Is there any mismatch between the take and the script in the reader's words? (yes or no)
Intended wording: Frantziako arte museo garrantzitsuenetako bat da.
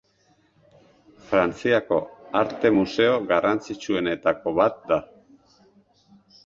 no